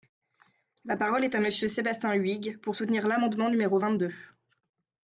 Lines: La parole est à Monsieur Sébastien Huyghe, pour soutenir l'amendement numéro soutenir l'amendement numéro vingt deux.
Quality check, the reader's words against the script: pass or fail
fail